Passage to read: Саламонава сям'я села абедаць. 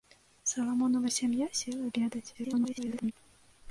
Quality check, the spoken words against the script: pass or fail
fail